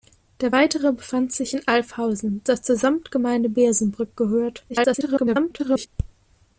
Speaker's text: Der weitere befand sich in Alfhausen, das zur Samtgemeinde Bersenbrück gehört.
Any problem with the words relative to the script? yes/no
yes